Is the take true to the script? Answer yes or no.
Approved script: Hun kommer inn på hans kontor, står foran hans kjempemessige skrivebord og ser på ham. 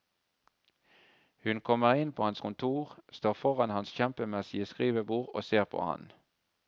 yes